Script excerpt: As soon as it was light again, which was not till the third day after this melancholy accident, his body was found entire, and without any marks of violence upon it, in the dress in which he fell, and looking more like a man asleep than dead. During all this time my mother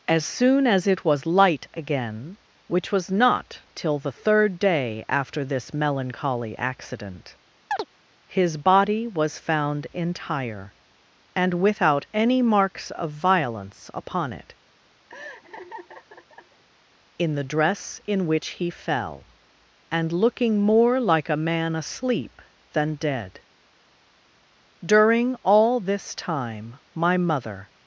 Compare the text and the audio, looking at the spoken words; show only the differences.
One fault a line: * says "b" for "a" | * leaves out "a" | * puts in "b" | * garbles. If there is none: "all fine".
all fine